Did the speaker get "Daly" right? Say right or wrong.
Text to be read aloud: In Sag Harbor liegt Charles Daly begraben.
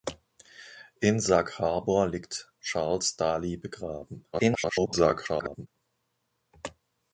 right